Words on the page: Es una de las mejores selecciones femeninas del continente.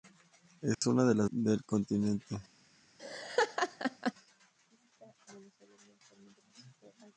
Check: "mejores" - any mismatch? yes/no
yes